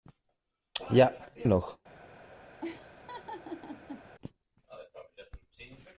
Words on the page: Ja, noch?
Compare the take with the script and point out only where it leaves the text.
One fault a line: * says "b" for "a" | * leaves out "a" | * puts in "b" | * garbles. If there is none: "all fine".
all fine